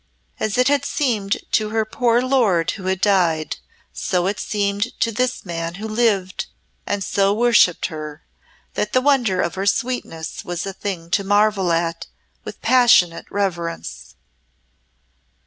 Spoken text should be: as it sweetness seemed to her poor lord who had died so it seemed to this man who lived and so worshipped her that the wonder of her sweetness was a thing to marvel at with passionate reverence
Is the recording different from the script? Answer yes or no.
yes